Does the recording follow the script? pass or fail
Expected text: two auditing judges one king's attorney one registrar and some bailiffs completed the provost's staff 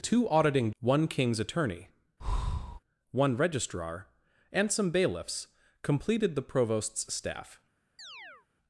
fail